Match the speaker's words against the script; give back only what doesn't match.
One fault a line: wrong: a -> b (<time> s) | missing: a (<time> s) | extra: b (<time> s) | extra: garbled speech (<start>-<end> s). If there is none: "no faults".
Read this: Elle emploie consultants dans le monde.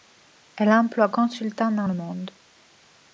no faults